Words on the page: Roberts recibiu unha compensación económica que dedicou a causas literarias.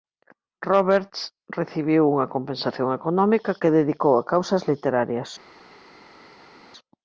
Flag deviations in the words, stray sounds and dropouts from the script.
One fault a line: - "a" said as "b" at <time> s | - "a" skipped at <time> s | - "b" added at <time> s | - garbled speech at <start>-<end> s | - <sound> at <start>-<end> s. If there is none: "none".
none